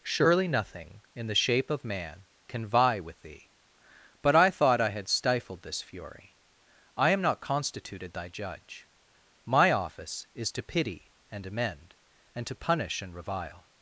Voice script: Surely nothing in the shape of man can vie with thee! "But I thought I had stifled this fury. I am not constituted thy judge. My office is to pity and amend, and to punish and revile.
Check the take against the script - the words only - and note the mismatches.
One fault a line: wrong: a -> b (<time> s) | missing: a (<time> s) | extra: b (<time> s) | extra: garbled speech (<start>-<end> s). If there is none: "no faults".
no faults